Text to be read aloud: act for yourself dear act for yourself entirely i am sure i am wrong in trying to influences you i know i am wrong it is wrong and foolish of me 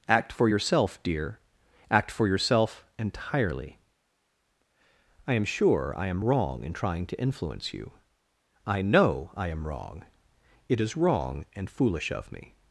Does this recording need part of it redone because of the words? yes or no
yes